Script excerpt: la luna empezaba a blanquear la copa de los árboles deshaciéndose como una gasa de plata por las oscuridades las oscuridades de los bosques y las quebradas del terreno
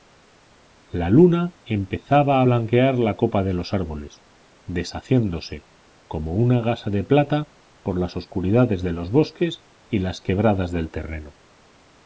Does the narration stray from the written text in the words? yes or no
yes